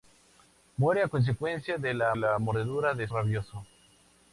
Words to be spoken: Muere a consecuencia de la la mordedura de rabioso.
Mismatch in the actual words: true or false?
false